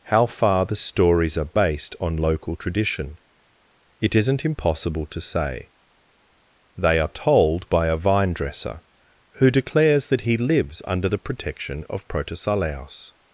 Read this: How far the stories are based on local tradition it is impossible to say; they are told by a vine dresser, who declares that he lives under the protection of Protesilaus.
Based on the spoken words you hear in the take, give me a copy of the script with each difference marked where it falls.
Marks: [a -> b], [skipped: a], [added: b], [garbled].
How far the stories are based on local tradition it [is -> isn't] impossible to say; they are told by a vine dresser, who declares that he lives under the protection of Protesilaus.